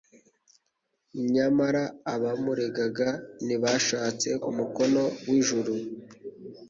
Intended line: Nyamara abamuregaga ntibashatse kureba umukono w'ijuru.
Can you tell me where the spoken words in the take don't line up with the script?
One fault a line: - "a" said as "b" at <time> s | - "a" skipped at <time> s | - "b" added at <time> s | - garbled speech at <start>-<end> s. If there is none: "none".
- "kureba" skipped at 4.3 s